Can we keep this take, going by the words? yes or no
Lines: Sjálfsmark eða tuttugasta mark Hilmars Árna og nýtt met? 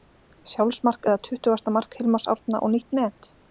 yes